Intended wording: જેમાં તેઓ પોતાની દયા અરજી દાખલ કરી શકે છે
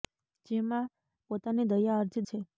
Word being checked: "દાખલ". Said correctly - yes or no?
no